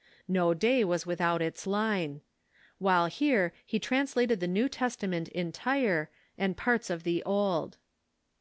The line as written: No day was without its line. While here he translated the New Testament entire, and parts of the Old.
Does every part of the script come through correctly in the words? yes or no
yes